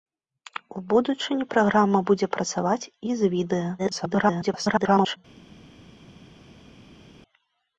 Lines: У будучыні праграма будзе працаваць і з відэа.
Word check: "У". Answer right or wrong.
right